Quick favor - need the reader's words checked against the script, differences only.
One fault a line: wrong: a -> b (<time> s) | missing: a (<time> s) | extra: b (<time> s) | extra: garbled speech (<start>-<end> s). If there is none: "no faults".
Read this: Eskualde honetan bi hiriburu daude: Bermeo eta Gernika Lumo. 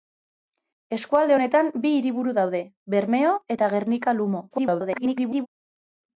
extra: garbled speech (4.5-5.5 s)